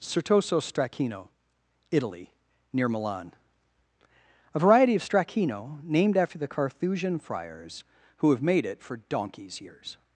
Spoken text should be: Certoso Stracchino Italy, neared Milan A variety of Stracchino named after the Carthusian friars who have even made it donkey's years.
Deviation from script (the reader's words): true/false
true